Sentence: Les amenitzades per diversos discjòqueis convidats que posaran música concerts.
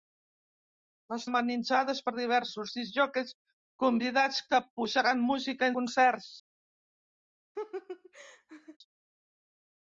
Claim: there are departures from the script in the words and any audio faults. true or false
true